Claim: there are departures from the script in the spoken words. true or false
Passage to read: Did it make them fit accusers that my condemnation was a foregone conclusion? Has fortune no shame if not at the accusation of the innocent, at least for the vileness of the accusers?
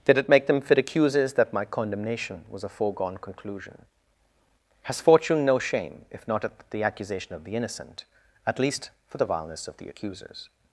false